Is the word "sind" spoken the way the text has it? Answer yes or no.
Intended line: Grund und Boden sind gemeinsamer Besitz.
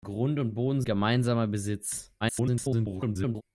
no